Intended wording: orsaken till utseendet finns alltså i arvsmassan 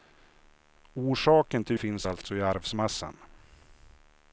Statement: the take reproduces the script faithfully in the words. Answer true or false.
false